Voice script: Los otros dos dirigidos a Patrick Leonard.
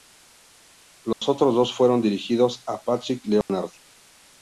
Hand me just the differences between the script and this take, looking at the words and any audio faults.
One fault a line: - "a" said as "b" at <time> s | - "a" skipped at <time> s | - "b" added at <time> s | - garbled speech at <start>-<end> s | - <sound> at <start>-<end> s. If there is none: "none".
- dropout at 1.1-1.2 s
- "fueron" added at 1.7 s
- dropout at 3.4-3.5 s